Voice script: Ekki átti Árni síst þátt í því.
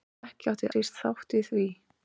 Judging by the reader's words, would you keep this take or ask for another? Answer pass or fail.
fail